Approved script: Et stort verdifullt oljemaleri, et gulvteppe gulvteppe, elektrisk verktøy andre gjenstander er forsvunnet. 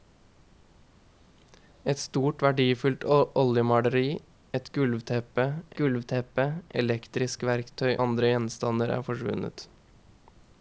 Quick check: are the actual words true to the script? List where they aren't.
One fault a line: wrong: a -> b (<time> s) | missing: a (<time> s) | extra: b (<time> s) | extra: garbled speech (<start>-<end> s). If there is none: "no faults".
no faults